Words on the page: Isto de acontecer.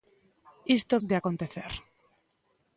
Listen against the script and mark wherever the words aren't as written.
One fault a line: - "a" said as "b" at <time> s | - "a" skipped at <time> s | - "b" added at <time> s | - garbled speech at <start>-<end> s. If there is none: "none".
none